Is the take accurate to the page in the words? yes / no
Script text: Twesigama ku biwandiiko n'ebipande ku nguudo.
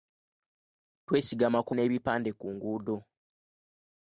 no